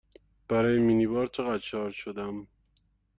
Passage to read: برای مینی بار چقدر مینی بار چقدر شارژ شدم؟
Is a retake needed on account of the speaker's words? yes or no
yes